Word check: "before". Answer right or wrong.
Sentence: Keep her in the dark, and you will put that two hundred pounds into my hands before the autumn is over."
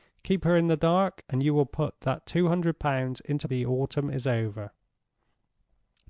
wrong